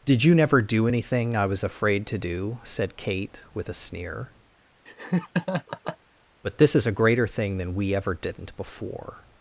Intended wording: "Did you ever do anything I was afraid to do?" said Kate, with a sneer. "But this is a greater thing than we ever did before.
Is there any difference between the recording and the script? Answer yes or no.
yes